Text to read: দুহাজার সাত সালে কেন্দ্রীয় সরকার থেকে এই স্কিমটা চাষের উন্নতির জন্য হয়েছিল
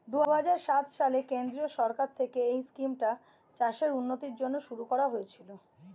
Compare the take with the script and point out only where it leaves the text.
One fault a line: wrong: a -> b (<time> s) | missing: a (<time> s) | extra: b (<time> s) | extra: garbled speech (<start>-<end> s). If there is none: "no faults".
extra: শুরু করা (4.7 s)